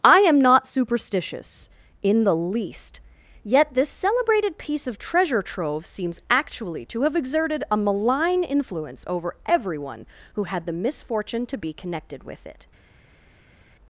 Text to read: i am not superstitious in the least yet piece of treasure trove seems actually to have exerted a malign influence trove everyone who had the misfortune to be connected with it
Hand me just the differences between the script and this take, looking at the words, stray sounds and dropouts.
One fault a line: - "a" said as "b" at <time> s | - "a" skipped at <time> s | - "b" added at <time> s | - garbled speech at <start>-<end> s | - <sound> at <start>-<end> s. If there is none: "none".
- "this celebrated" added at 3.8 s
- "trove" said as "over" at 9.1 s